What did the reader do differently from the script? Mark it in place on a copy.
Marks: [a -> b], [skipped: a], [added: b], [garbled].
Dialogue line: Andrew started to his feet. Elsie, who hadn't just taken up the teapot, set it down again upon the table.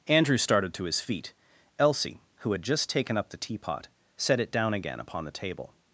Andrew started to his feet. Elsie, who [hadn't -> had] just taken up the teapot, set it down again upon the table.